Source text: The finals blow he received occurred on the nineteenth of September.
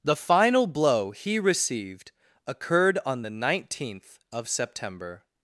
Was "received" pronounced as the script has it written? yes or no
yes